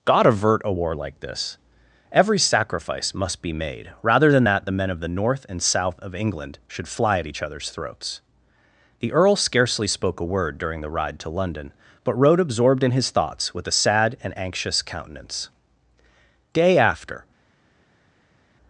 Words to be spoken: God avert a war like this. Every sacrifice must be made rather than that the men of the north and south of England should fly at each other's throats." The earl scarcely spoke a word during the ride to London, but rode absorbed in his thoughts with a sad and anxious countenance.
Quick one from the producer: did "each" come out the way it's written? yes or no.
yes